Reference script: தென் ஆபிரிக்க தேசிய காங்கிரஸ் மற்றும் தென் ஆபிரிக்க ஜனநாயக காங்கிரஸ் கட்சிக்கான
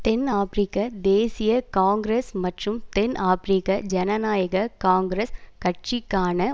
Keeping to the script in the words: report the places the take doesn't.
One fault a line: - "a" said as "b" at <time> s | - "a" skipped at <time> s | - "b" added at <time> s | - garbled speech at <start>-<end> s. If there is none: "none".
none